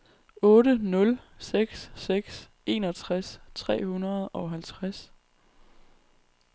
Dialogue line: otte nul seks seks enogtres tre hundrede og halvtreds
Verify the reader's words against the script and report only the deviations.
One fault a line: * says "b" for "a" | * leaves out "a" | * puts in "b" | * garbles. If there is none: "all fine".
all fine